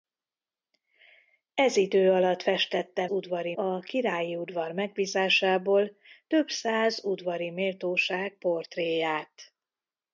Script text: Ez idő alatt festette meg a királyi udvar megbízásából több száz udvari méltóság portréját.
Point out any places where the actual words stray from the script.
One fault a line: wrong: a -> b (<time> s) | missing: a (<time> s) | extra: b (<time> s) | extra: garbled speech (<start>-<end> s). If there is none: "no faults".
wrong: meg -> udvari (3.1 s)